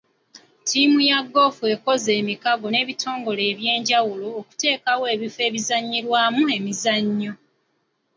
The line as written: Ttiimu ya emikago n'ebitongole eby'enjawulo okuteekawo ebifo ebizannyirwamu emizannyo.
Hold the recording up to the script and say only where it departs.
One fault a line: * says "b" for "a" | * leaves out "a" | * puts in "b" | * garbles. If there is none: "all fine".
* puts in "goofu ekoze"